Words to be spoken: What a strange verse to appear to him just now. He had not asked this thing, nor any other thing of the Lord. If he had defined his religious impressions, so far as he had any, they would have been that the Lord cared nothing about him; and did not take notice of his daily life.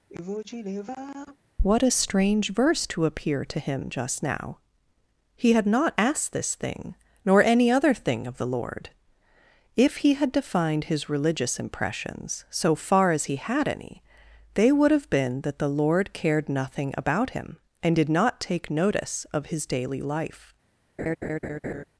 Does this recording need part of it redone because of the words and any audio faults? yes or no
yes